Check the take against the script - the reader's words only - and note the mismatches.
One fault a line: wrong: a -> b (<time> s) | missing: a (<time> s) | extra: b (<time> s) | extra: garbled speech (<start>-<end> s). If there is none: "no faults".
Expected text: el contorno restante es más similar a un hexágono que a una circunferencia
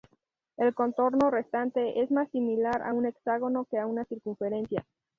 no faults